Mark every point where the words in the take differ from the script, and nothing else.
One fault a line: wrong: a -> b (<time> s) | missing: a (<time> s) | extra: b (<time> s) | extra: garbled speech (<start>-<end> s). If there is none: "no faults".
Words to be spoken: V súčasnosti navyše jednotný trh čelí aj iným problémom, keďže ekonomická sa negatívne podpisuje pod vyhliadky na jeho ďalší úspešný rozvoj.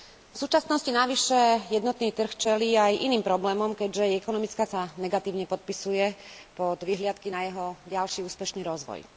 no faults